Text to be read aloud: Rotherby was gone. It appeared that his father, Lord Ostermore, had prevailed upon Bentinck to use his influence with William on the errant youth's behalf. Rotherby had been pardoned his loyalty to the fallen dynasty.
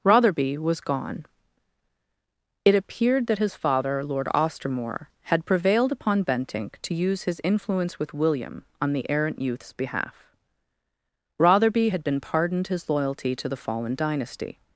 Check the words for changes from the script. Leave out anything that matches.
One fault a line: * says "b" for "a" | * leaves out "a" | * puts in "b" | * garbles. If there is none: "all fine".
all fine